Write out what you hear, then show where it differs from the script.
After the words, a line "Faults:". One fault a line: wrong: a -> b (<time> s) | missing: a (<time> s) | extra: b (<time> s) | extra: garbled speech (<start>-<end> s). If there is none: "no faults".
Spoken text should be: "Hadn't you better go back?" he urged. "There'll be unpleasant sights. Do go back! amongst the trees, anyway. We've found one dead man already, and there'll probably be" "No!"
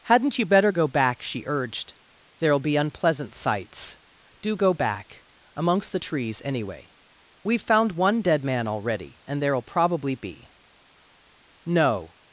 "Hadn't you better go back?" she urged. "There'll be unpleasant sights. Do go back! amongst the trees, anyway. We've found one dead man already, and there'll probably be" "No!"
Faults:
wrong: he -> she (1.2 s)